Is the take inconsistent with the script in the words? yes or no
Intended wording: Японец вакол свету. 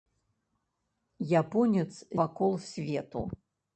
no